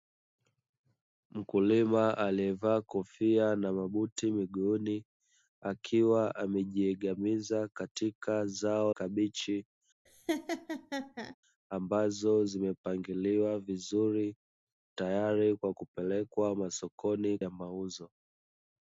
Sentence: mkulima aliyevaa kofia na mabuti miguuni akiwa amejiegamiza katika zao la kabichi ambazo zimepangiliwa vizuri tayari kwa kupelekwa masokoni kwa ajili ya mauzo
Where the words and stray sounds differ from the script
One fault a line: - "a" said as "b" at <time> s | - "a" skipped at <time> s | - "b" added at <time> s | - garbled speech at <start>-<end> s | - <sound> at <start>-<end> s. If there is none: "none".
- "la" skipped at 8.9 s
- laugh at 10.1-11.4 s
- "kwa ajili" skipped at 17.4 s